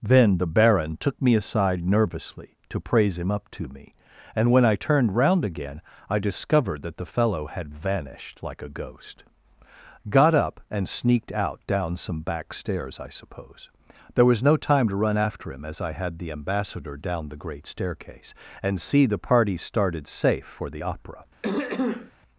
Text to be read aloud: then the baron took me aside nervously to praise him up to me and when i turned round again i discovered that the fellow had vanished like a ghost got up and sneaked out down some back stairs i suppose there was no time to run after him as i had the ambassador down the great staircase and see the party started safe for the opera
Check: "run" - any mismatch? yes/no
no